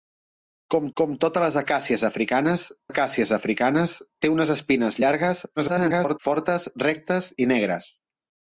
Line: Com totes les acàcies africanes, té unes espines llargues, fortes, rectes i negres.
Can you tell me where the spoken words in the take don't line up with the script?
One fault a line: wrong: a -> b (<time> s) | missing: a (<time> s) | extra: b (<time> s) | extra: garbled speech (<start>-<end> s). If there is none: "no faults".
extra: com (1.0 s)
extra: acàcies africanes (2.9 s)
extra: garbled speech (5.6-6.2 s)